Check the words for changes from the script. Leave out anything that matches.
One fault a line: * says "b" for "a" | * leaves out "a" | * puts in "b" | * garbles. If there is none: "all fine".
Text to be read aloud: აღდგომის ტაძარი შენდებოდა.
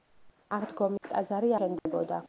all fine